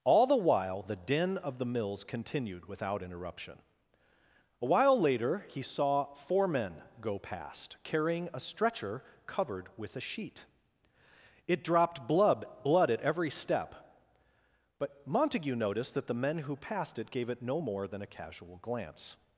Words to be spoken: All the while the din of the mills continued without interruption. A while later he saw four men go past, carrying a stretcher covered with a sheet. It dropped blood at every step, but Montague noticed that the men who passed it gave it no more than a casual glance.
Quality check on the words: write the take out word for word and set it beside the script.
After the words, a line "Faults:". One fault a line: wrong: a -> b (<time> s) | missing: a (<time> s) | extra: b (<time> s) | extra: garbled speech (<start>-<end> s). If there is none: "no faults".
All the while the din of the mills continued without interruption. A while later he saw four men go past, carrying a stretcher covered with a sheet. It dropped blood blood at every step, but Montague noticed that the men who passed it gave it no more than a casual glance.
Faults:
extra: blood (12.6 s)